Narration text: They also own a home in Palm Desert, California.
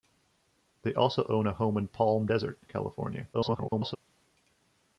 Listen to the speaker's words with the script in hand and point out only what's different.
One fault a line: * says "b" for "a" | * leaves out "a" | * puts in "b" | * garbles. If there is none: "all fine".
* garbles